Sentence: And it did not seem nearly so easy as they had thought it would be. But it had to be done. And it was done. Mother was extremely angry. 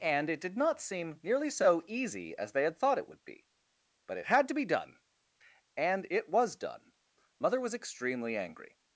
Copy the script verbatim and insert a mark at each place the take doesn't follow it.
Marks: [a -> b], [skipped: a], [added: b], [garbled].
And it did not seem nearly so easy as they had thought it would be. But it had to be done. And it was done. Mother was extremely angry.